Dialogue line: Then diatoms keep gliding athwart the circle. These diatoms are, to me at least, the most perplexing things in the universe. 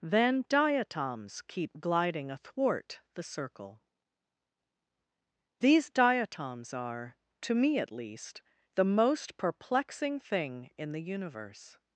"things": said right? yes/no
no